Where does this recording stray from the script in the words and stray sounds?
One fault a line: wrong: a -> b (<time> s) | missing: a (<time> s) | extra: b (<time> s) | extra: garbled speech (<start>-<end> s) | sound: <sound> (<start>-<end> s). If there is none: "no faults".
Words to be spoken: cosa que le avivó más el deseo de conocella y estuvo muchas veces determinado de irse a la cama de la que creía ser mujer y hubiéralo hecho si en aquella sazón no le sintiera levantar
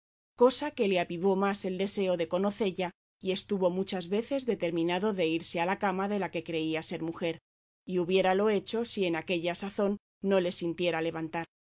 no faults